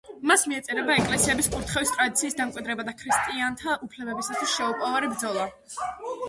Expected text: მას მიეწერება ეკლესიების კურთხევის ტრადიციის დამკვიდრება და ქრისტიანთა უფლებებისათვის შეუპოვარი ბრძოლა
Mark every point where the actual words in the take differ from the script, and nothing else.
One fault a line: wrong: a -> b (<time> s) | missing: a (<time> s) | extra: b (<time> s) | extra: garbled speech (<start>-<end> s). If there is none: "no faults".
no faults